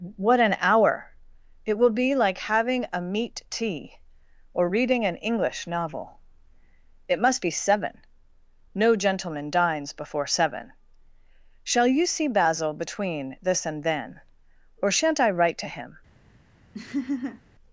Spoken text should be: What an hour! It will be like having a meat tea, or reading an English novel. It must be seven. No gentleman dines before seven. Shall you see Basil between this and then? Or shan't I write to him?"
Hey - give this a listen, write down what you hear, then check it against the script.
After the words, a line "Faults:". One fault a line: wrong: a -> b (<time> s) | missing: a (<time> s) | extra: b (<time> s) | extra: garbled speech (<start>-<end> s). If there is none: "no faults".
What an hour! It will be like having a meat tea, or reading an English novel. It must be seven. No gentleman dines before seven. Shall you see Basil between this and then? Or shan't I write to him?"
Faults:
no faults